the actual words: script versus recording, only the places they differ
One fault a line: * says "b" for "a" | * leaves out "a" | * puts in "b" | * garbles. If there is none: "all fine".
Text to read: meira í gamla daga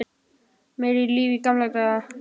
* puts in "líf"